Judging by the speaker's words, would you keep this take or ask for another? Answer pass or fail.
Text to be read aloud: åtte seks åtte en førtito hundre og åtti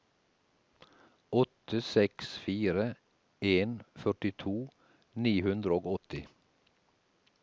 fail